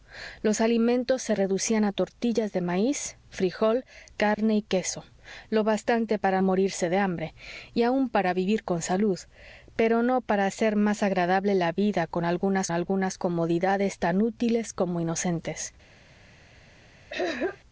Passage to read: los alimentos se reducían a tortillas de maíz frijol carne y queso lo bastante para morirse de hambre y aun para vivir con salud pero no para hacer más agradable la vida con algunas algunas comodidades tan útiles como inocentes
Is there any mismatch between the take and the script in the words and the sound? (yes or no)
yes